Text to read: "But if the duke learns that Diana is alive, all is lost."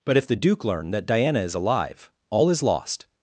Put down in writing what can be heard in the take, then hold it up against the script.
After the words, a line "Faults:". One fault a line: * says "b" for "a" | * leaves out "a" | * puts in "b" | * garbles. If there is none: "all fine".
"But if the duke learn that Diana is alive, all is lost."
Faults:
* says "learn" for "learns"